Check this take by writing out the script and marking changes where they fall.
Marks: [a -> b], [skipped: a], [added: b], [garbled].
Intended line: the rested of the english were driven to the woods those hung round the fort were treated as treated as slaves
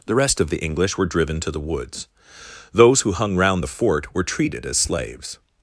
the [rested -> rest] of the english were driven to the woods those [added: who] hung round the fort were treated as [skipped: treated as] slaves